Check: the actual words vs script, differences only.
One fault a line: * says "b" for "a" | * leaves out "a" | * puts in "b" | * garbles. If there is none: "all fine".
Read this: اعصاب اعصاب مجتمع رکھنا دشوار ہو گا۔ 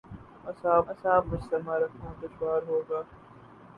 all fine